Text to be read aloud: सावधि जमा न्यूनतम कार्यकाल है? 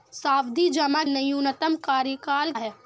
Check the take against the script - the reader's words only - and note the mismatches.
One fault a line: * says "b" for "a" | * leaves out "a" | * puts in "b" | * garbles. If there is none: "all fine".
all fine